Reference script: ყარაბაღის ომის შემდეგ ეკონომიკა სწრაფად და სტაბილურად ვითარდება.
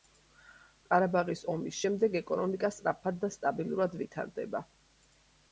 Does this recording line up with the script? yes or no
yes